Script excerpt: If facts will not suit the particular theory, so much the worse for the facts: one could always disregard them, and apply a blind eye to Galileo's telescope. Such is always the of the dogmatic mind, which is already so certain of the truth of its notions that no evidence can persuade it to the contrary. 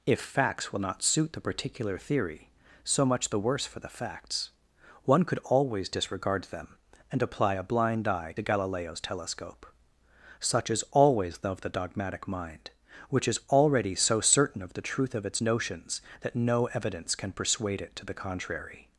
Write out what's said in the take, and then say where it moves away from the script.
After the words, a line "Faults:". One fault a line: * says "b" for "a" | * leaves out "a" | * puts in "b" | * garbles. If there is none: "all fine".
If facts will not suit the particular theory, so much the worse for the facts: one could always disregard them, and apply a blind eye to Galileo's telescope. Such is always the of the dogmatic mind, which is already so certain of the truth of its notions that no evidence can persuade it to the contrary.
Faults:
all fine